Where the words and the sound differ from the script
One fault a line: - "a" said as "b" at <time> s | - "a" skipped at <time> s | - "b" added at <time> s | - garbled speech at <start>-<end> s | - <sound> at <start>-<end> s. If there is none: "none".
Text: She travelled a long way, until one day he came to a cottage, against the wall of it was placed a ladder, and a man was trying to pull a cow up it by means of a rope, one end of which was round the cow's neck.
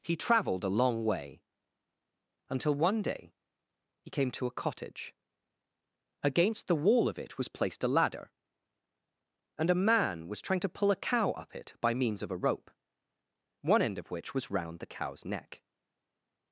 - "She" said as "He" at 0.0 s